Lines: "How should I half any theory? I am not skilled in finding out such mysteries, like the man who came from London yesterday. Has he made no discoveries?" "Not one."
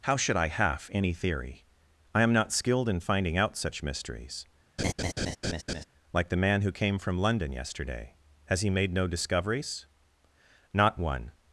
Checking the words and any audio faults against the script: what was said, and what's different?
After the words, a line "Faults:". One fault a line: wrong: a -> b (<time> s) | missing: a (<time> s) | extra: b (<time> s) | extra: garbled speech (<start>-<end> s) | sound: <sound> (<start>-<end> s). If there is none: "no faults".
"How should I half any theory? I am not skilled in finding out such mysteries, like the man who came from London yesterday. Has he made no discoveries?" "Not one."
Faults:
sound: laugh (4.8-5.8 s)